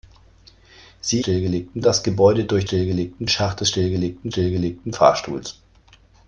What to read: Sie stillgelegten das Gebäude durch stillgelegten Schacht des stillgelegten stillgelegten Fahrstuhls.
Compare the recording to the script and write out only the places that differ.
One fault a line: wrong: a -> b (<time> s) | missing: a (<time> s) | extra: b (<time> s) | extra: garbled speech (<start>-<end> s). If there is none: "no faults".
no faults